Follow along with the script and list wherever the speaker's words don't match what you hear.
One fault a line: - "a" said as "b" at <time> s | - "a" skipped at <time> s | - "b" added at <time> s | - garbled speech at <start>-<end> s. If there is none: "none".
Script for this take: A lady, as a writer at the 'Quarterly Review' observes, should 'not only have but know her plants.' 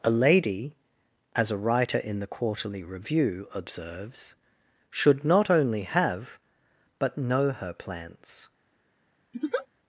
- "at" said as "in" at 2.0 s